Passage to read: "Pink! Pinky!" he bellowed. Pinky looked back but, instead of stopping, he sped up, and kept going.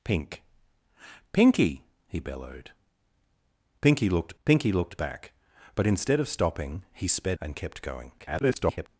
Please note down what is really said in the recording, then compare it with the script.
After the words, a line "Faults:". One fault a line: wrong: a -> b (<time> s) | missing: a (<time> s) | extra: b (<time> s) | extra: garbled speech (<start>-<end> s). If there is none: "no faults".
"Pink! Pinky!" he bellowed. Pinky looked pinky looked back but, instead of stopping, he sped and kept going. [garbled]
Faults:
extra: pinky looked (4.4 s)
missing: up (7.4 s)
extra: garbled speech (8.2-8.9 s)